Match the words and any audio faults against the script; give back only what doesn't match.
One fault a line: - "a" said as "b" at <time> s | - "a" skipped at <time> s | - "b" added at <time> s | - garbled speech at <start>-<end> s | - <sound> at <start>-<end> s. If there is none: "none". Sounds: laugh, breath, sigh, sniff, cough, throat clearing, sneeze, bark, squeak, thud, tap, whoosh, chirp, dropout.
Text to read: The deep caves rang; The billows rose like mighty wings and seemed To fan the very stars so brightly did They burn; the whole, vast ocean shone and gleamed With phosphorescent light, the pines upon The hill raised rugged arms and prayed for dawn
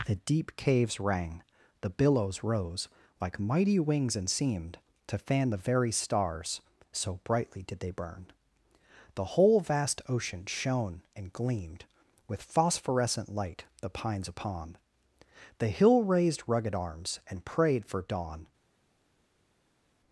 none